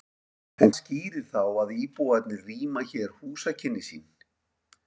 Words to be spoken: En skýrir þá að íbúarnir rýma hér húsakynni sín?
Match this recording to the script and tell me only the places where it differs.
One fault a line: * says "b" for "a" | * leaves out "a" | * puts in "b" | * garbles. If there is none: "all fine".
all fine